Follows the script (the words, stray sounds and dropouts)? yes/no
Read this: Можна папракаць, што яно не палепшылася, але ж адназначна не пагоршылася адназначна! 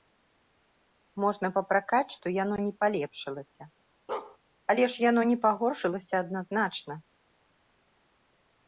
no